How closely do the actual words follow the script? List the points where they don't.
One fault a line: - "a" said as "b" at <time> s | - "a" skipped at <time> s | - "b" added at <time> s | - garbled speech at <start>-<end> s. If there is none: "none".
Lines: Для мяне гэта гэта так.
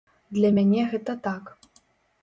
- "гэта" skipped at 1.2 s